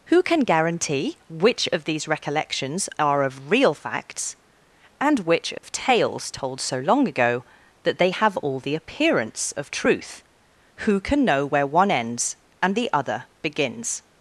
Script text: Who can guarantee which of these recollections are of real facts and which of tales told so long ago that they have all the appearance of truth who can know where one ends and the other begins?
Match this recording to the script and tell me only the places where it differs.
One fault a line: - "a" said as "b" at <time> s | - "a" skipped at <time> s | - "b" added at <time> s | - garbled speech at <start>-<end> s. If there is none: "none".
none